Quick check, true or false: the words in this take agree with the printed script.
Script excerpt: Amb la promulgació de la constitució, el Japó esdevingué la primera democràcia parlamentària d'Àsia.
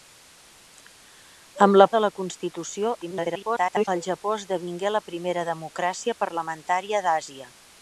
false